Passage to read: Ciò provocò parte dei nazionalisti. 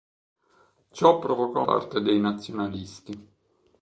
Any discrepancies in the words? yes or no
no